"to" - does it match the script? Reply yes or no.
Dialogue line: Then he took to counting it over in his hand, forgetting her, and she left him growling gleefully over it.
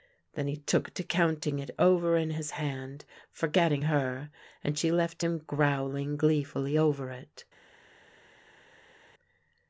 yes